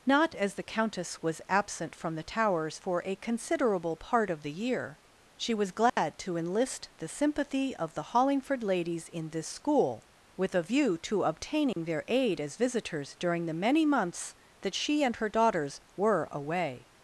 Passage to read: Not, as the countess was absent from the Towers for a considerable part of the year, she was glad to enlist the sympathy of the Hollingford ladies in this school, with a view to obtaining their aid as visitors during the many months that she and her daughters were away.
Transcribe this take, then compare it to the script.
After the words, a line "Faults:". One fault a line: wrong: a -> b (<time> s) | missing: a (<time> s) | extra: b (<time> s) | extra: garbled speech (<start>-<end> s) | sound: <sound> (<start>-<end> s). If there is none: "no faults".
Not, as the countess was absent from the Towers for a considerable part of the year, she was glad to enlist the sympathy of the Hollingford ladies in this school, with a view to obtaining their aid as visitors during the many months that she and her daughters were away.
Faults:
sound: dropout (5.9-6.0 s)
sound: dropout (11.7-11.8 s)